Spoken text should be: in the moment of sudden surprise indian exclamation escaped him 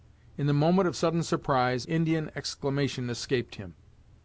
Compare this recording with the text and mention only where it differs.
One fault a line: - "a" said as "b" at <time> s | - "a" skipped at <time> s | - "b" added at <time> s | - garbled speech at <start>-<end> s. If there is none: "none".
none